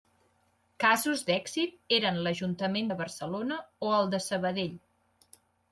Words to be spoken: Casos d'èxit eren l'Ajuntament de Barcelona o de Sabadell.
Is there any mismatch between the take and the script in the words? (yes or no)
yes